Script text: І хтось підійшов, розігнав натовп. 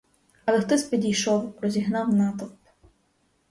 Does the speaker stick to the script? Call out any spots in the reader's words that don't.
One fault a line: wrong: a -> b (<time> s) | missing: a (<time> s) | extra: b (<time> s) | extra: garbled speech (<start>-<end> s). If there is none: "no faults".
wrong: І -> Але (0.5 s)